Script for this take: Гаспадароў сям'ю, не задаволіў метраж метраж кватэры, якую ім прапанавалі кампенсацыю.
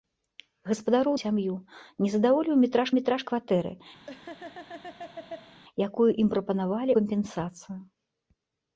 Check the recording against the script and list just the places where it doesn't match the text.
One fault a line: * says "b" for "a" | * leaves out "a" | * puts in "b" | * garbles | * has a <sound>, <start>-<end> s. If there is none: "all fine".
* has a laugh, 4.1-5.6 s